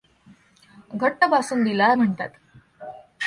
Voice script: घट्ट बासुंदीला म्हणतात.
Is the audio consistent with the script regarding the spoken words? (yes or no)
yes